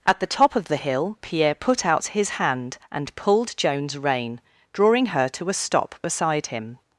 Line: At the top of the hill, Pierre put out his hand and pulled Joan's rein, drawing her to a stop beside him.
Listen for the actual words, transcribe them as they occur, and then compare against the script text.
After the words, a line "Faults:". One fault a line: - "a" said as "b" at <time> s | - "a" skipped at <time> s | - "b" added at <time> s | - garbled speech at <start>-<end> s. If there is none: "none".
At the top of the hill, Pierre put out his hand and pulled Joan's rein, drawing her to a stop beside him.
Faults:
none